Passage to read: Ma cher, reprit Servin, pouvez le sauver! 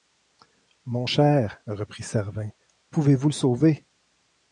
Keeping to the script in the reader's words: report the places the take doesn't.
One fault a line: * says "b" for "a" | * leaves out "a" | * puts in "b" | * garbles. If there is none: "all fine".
* says "Mon" for "Ma"
* puts in "vous"